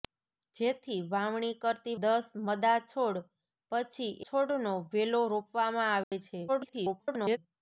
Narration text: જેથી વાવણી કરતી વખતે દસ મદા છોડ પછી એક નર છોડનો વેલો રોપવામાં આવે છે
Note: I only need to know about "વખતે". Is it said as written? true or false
false